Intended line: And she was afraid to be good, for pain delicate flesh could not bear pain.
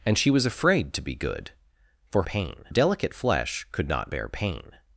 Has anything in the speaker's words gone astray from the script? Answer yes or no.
no